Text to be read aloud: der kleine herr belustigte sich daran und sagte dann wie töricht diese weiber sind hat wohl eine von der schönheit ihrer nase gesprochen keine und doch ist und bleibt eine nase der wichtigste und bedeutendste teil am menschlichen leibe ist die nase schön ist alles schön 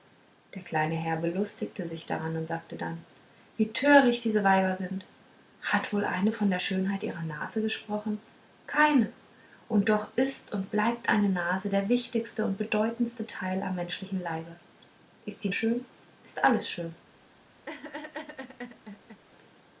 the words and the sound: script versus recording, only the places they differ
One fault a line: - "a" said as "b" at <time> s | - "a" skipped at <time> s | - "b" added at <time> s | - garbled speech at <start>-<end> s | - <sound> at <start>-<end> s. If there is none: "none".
- "nase" skipped at 15.5 s
- laugh at 17.7-19.2 s